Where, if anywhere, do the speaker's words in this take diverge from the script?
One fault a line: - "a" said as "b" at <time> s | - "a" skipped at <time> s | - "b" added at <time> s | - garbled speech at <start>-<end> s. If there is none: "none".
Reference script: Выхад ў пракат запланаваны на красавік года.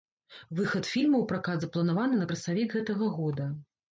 - "фільма" added at 0.9 s
- "гэтага" added at 2.8 s